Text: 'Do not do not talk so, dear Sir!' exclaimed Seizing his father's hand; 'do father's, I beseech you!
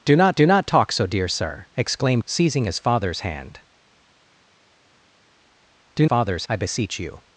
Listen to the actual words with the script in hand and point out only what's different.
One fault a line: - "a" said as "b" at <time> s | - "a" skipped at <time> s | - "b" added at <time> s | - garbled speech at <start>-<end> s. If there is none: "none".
none